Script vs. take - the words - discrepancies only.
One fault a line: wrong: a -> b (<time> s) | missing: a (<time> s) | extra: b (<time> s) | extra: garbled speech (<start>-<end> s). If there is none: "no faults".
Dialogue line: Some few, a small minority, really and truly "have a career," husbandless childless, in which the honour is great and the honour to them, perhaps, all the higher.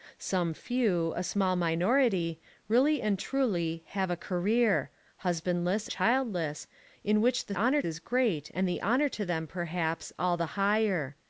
no faults